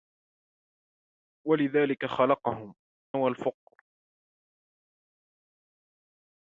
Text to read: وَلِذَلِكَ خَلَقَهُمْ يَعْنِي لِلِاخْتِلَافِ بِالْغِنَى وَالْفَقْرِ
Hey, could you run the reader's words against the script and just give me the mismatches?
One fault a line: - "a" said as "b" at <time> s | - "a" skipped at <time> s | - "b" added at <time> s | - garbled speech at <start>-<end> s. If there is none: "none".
- "يَعْنِي لِلِاخْتِلَافِ بِالْغِنَى" skipped at 2.8 s